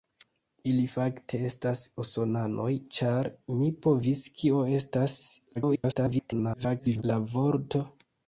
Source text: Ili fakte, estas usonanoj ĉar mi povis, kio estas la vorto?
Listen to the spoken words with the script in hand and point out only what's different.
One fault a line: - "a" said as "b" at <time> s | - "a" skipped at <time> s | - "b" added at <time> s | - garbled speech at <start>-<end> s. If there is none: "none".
- garbled speech at 5.5-7.0 s